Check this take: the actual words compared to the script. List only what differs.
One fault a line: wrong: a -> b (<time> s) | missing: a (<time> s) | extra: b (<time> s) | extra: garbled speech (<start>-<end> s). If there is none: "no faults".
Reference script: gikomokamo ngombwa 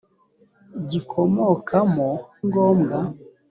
no faults